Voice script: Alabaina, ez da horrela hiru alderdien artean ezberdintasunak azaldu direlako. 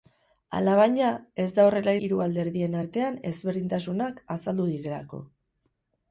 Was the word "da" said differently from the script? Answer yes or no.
no